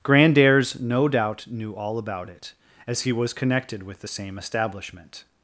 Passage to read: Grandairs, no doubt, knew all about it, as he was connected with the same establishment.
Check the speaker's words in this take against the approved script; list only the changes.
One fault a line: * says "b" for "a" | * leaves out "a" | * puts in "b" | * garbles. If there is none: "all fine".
all fine